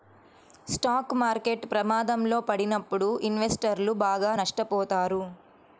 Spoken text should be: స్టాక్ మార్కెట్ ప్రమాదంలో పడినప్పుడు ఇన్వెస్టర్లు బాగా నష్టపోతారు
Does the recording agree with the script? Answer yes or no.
yes